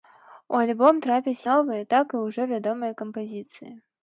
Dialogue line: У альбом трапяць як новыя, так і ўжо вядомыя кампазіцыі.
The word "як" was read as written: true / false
false